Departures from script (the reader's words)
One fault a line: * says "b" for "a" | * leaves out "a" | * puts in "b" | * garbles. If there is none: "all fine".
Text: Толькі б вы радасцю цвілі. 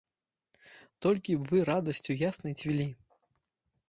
* puts in "яснай"